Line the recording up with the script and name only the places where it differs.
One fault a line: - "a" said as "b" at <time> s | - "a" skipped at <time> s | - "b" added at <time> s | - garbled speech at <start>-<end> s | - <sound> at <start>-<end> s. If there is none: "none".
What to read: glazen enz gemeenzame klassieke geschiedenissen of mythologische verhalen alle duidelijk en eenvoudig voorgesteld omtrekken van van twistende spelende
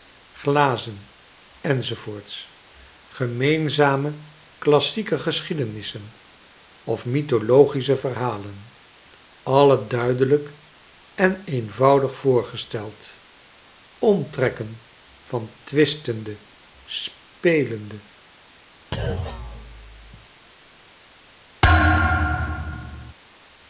- "van" skipped at 15.5 s
- thud at 18.9-20.3 s
- thud at 21.6-23.1 s